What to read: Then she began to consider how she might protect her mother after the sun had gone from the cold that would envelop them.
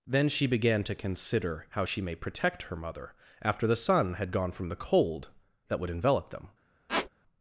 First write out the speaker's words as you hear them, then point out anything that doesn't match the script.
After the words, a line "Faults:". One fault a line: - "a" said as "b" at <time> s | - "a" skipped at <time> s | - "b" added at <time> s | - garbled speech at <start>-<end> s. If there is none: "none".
Then she began to consider how she may protect her mother after the sun had gone from the cold that would envelop them.
Faults:
- "might" said as "may" at 2.0 s